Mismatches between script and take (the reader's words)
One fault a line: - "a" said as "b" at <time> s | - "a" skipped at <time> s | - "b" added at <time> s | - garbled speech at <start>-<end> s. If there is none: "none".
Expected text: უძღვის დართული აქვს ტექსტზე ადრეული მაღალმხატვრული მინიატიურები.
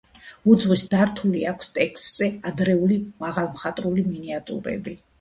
none